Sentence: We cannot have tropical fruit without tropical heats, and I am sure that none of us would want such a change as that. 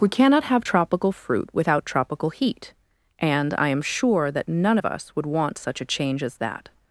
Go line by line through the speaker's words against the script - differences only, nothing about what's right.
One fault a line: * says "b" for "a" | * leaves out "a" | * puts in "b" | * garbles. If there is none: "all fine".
* says "heat" for "heats"